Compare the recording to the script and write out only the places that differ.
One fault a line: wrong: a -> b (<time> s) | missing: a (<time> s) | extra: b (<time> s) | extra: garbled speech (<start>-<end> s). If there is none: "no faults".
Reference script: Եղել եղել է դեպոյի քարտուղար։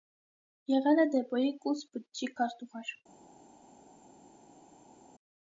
missing: եղել (1.0 s)
extra: կուսբջջի (1.7 s)